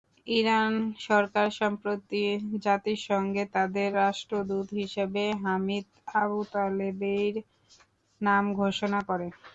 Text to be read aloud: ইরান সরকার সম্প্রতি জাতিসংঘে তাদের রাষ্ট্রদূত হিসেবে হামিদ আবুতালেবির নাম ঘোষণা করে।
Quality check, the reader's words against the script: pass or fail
pass